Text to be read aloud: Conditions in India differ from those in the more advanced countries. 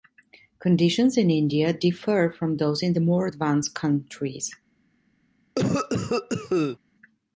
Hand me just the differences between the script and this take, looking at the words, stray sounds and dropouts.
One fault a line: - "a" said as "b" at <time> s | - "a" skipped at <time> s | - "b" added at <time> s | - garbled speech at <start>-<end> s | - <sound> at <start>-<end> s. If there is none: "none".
- cough at 5.6-6.8 s